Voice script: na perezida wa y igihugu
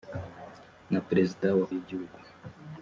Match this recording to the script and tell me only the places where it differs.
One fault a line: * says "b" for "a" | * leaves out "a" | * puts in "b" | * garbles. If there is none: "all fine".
all fine